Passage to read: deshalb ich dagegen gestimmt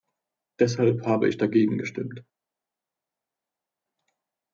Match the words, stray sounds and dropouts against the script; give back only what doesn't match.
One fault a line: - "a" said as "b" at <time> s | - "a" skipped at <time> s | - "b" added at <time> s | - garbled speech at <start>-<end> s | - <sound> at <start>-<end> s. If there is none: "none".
- "habe" added at 1.1 s